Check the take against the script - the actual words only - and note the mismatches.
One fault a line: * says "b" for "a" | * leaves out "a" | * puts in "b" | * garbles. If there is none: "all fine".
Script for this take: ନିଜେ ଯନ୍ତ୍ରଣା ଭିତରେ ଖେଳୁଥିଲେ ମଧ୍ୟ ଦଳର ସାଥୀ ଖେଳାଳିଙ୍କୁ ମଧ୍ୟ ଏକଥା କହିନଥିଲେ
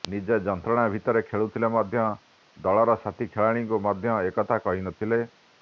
all fine